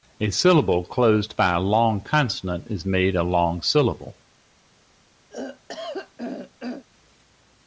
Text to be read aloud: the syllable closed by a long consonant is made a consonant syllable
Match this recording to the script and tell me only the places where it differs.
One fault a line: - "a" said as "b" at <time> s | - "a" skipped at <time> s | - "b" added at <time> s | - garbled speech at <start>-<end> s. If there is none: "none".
- "the" said as "a" at 0.2 s
- "consonant" said as "long" at 3.2 s